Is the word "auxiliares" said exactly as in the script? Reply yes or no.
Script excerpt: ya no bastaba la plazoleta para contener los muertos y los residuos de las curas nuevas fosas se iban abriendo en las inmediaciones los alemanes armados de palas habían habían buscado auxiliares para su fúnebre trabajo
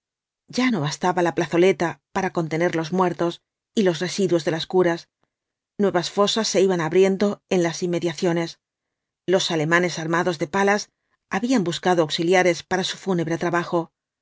yes